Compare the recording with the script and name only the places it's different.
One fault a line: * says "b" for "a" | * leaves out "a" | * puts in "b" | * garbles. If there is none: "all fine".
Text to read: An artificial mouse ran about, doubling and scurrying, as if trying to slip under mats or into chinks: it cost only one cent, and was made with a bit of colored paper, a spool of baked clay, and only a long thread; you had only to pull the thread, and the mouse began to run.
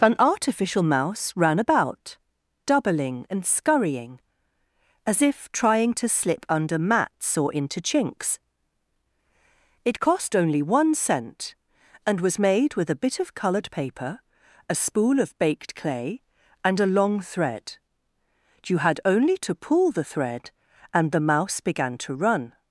* leaves out "only"